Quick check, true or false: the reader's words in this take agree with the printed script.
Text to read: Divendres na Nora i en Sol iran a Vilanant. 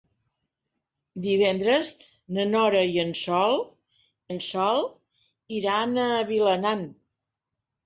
false